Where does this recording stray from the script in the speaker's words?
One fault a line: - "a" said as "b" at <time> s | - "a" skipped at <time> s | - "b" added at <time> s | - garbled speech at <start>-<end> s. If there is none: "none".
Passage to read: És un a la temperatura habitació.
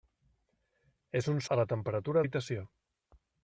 none